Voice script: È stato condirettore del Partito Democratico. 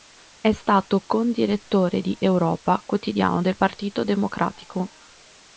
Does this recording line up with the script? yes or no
no